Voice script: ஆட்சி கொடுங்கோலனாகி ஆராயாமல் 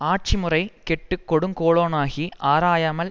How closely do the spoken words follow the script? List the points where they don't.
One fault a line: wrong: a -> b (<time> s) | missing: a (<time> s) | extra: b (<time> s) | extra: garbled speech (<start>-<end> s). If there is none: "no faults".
extra: முறை கெட்டு (0.4 s)